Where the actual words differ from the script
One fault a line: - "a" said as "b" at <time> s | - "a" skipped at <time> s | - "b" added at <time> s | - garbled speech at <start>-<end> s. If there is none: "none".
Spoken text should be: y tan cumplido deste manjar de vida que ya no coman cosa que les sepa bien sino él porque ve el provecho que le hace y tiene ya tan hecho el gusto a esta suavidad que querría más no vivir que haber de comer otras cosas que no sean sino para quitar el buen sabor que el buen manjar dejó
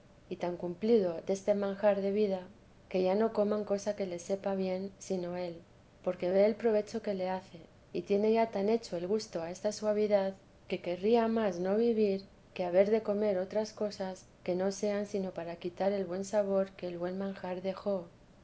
none